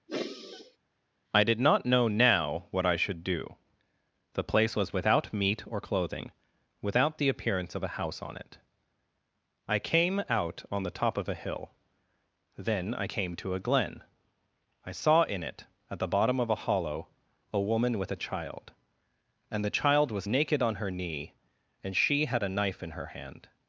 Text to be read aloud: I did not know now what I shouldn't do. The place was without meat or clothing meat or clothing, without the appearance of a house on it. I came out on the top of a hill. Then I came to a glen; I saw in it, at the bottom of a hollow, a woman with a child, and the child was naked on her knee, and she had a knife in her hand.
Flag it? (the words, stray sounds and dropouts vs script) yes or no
yes